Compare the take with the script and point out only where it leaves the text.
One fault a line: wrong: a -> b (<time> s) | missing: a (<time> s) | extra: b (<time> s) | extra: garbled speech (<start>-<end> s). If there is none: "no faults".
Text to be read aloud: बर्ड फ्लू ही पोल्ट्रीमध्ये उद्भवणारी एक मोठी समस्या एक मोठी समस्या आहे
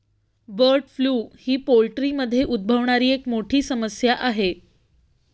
missing: एक मोठी समस्या (4.1 s)